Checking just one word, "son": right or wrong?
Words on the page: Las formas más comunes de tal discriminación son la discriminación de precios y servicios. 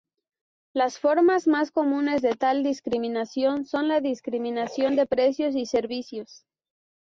right